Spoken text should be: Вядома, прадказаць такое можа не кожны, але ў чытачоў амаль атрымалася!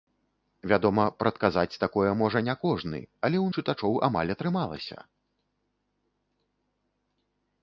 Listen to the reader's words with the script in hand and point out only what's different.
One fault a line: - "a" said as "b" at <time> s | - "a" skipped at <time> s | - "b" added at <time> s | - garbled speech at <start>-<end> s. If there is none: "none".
none